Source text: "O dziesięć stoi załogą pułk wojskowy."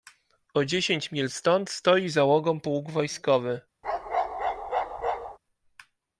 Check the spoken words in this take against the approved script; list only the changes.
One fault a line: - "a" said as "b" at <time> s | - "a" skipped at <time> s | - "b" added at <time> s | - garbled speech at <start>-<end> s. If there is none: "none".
- "mil stąd" added at 1.1 s